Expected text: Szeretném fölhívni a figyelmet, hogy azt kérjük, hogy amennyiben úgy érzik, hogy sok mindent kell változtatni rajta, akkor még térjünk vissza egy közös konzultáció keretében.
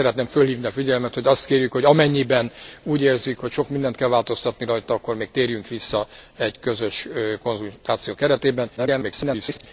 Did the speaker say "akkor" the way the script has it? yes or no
yes